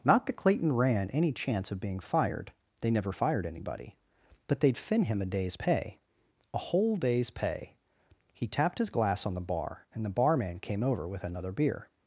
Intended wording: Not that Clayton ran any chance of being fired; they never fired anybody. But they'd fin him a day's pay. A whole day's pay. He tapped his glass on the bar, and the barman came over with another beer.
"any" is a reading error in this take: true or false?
false